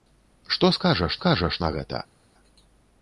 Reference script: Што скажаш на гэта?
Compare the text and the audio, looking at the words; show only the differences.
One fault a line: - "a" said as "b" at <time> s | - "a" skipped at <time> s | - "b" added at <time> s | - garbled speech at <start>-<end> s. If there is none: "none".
- "скажаш" added at 1.2 s